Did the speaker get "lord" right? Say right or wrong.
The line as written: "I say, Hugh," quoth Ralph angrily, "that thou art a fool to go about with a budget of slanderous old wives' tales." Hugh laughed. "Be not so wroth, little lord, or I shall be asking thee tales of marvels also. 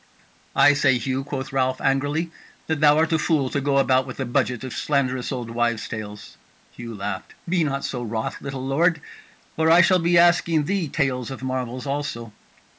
right